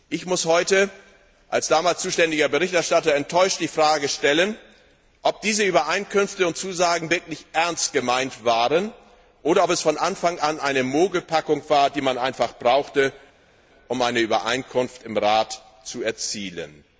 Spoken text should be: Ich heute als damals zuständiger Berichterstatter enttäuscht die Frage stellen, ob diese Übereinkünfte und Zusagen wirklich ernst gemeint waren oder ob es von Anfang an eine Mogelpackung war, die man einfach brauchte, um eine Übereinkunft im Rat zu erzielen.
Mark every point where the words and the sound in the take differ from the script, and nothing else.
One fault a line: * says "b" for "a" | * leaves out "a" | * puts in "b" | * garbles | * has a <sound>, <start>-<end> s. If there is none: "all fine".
* puts in "muss"